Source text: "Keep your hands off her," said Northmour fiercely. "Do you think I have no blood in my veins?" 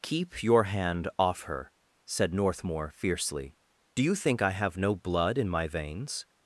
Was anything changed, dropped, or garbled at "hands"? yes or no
yes